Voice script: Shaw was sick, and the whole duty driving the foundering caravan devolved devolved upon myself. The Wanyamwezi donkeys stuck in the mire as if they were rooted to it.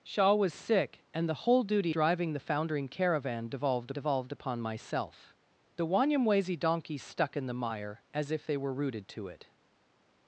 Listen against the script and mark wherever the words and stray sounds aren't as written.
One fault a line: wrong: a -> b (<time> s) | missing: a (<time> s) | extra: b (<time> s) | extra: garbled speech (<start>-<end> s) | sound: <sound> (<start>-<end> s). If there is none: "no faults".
no faults